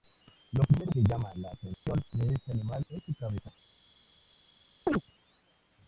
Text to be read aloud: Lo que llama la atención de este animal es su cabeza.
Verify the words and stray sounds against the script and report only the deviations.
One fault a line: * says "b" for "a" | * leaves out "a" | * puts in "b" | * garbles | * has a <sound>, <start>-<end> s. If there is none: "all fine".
* puts in "primero"
* has a dropout, 1.7-1.9 s
* has a chirp, 4.9-5.0 s